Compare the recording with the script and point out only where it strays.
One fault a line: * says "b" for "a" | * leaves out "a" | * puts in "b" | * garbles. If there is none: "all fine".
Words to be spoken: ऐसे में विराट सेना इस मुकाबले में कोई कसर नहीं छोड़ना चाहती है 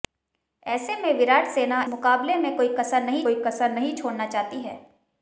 * leaves out "इस"
* puts in "कोई कसर नहीं"